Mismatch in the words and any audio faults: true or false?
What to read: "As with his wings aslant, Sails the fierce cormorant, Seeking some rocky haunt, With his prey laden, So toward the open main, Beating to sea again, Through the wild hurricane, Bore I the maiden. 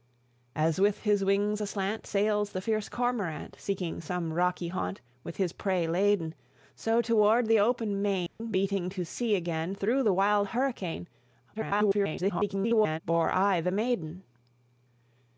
true